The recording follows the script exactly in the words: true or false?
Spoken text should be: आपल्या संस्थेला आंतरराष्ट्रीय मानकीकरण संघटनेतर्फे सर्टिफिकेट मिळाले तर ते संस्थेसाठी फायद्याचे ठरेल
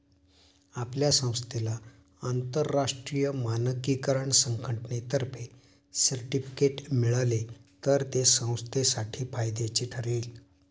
true